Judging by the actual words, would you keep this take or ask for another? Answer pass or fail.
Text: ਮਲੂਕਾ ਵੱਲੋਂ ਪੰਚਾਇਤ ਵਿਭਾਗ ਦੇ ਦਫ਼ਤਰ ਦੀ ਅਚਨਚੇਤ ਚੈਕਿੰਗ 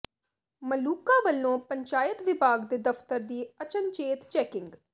pass